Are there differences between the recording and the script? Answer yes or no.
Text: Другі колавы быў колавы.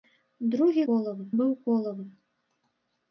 no